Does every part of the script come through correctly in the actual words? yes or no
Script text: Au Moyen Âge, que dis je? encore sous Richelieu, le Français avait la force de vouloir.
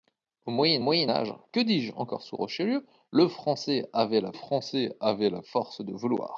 no